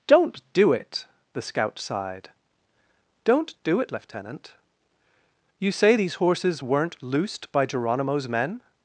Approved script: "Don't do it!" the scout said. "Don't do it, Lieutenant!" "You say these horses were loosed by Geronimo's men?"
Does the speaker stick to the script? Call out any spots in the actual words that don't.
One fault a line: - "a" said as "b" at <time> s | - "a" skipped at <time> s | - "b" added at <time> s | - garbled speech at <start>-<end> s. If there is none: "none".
- "said" said as "sighed" at 1.8 s
- "were" said as "weren't" at 6.6 s